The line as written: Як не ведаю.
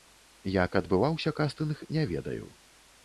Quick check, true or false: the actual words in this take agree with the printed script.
false